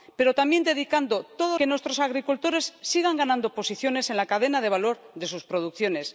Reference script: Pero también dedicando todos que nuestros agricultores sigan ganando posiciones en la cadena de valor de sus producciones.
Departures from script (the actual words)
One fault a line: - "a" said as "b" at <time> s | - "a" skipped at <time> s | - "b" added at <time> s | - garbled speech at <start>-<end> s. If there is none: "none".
none